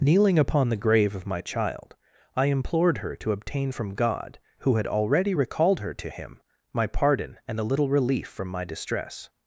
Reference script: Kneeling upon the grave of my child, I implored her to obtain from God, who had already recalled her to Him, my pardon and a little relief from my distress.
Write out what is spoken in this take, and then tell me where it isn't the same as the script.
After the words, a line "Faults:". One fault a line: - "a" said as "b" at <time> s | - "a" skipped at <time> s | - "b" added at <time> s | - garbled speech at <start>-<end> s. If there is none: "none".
Kneeling upon the grave of my child, I implored her to obtain from God, who had already recalled her to Him, my pardon and a little relief from my distress.
Faults:
none